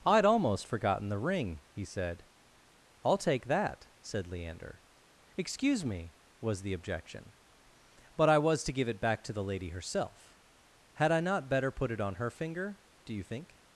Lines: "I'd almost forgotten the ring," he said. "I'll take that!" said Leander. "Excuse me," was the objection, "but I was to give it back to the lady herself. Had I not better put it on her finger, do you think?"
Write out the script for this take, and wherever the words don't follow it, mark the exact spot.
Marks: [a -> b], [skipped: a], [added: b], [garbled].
"I'd almost forgotten the ring," he said. "I'll take that!" said Leander. "Excuse me," was the objection, "but I was to give it back to the lady herself. Had I not better put it on her finger, do you think?"